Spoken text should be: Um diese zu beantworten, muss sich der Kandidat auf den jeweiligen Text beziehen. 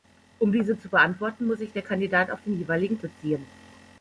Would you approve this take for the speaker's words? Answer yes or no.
no